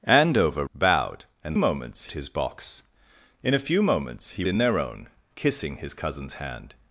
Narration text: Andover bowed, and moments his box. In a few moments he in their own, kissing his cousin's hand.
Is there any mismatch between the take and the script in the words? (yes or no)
no